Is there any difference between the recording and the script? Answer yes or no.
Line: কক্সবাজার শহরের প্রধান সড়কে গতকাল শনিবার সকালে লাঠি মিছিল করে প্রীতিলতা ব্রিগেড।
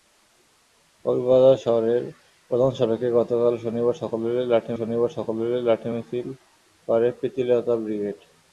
yes